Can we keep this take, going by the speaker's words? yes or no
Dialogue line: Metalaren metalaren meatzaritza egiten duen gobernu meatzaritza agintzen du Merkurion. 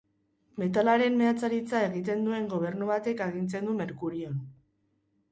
no